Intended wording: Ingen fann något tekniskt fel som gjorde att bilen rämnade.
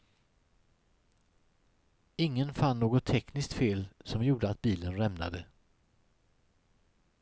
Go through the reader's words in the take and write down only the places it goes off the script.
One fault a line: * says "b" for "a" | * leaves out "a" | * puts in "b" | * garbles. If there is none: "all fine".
all fine